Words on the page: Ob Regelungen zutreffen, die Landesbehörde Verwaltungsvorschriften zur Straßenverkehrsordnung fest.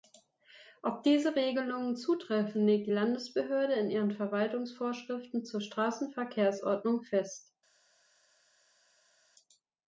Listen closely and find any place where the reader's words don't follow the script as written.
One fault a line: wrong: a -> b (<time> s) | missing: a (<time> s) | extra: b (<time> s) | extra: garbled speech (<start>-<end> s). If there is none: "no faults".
extra: diese (1.0 s)
extra: legt (2.6 s)
extra: in ihren (3.7 s)